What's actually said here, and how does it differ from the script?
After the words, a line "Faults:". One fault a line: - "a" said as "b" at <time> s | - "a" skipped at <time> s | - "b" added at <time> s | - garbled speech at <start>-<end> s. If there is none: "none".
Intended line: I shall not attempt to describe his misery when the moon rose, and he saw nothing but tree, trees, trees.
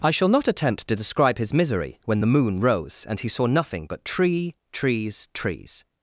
I shall not attempt to describe his misery when the moon rose, and he saw nothing but tree, trees, trees.
Faults:
none